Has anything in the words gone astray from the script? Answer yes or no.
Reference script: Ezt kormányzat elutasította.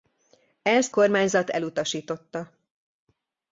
no